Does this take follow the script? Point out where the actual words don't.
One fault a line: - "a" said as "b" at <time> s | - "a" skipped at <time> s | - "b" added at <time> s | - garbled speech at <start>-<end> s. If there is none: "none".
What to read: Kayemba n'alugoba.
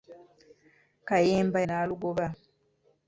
none